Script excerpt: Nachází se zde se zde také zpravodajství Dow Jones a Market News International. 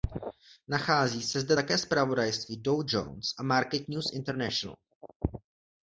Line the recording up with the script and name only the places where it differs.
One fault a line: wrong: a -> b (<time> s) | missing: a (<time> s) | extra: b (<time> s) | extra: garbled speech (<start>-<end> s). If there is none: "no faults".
missing: se zde (1.6 s)